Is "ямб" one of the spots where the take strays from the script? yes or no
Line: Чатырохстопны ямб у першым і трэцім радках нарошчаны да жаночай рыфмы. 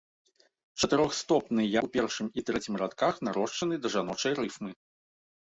yes